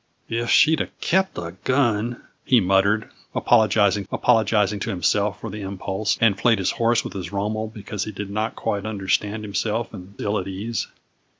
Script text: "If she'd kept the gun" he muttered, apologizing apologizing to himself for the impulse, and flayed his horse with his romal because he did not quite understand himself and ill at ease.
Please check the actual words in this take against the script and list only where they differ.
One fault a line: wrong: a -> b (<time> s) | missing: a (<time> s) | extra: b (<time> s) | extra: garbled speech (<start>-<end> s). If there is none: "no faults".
no faults